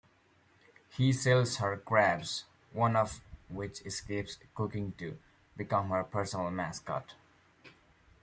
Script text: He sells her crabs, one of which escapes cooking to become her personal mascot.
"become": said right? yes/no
yes